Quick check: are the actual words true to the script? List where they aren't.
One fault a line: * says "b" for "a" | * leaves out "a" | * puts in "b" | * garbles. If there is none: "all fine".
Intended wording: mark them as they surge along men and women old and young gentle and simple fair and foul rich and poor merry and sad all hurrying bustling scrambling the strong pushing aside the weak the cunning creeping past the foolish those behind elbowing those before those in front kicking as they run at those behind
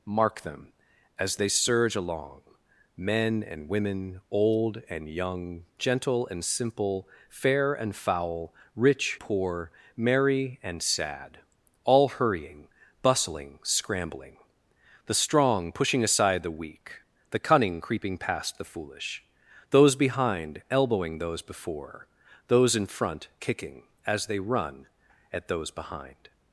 * leaves out "and"